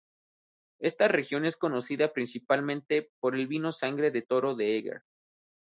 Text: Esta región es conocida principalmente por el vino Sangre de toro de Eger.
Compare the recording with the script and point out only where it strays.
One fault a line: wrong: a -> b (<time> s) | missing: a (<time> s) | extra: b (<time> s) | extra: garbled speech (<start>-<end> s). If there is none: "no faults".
no faults